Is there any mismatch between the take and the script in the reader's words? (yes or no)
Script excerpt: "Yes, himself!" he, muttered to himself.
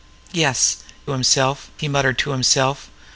no